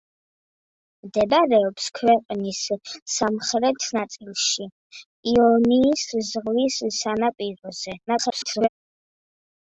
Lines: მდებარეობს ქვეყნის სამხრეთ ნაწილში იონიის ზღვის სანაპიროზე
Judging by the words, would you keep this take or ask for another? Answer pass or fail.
fail